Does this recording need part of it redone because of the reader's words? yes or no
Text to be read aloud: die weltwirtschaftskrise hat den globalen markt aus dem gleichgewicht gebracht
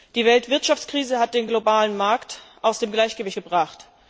no